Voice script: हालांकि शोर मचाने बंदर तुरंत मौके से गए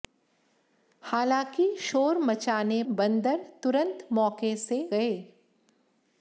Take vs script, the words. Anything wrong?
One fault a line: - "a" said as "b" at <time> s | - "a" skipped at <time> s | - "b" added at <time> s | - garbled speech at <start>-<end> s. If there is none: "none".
none